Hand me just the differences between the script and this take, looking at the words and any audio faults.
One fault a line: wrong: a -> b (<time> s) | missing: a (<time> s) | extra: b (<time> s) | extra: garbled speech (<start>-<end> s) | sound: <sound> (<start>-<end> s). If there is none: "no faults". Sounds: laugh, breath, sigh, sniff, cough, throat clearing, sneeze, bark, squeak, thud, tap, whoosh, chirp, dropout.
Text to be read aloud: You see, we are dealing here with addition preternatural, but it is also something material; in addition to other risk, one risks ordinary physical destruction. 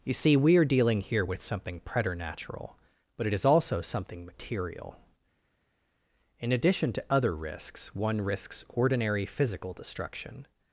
wrong: addition -> something (1.4 s)
wrong: risk -> risks (7.3 s)